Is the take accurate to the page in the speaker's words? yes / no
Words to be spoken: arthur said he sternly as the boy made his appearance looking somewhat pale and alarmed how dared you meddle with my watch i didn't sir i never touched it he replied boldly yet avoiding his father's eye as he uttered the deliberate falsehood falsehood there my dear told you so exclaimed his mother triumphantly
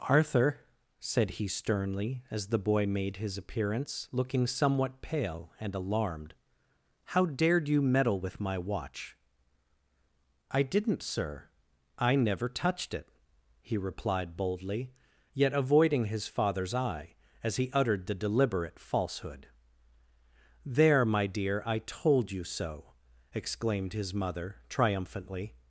no